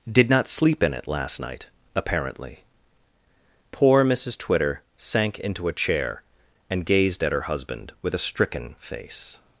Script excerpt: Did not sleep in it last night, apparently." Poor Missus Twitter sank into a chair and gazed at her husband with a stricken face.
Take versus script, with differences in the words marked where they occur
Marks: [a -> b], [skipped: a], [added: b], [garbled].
Did not sleep in it last night, apparently." Poor Missus Twitter sank into a chair and gazed at her husband with a stricken face.